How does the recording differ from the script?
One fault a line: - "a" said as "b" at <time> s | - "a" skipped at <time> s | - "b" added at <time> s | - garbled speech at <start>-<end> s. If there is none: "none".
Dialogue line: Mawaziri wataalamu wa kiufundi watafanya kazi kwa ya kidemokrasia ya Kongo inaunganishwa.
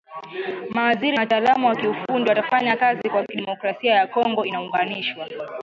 none